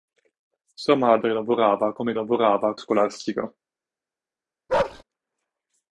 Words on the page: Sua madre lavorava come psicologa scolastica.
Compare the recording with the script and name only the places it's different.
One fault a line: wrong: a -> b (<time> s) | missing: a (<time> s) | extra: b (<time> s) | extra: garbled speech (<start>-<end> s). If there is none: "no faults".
wrong: psicologa -> lavorava (2.1 s)